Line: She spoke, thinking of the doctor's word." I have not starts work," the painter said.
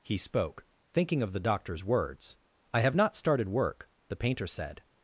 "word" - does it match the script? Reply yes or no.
no